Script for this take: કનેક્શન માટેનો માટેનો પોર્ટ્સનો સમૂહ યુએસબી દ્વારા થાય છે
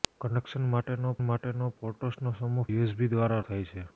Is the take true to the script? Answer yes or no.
yes